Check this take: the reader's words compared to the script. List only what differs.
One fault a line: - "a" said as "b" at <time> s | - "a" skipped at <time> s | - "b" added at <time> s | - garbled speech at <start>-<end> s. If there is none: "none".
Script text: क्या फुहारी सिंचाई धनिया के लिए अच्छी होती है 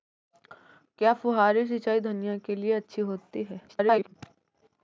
- garbled speech at 3.7-4.1 s